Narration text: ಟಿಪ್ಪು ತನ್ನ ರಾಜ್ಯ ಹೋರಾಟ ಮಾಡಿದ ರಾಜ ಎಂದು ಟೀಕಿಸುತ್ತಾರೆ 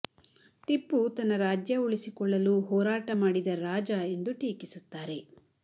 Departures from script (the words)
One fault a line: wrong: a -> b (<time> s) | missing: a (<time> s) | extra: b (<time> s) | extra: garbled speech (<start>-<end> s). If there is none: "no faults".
extra: ಉಳಿಸಿಕೊಳ್ಳಲು (1.8 s)